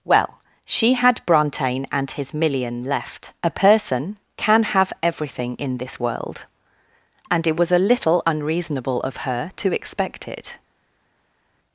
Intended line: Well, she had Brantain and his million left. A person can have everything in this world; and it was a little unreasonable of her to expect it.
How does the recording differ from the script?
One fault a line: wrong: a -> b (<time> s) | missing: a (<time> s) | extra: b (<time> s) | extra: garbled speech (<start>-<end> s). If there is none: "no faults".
no faults